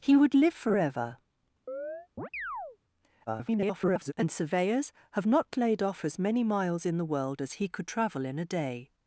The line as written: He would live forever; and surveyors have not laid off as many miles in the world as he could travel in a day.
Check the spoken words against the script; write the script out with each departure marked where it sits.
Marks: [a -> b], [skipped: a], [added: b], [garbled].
He would live forever; [garbled] and surveyors have not laid off as many miles in the world as he could travel in a day.